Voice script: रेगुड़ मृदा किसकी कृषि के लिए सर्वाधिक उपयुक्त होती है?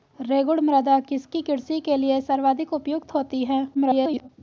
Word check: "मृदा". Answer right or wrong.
right